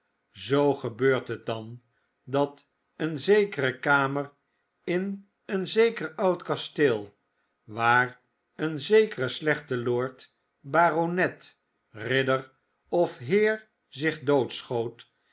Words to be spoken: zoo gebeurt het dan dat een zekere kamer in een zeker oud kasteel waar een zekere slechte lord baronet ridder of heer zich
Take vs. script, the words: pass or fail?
pass